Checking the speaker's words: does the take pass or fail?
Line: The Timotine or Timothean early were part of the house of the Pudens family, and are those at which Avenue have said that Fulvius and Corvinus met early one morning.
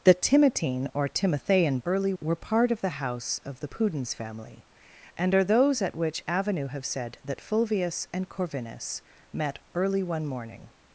pass